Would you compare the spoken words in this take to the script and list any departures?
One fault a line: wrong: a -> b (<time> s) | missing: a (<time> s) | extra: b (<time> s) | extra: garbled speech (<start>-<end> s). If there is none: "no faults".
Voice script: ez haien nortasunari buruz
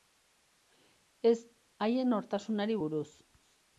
no faults